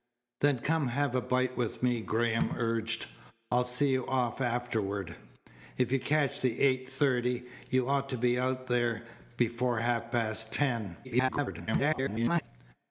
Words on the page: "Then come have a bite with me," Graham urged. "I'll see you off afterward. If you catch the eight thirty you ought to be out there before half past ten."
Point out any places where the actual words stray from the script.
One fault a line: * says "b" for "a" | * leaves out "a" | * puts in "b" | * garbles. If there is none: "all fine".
* garbles